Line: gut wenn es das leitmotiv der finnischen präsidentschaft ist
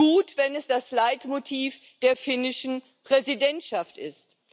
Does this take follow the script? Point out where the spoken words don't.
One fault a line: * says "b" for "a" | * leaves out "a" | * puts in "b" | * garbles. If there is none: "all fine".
all fine